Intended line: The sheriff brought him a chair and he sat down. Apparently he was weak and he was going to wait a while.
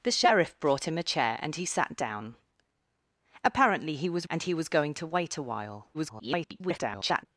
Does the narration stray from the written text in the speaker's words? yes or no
yes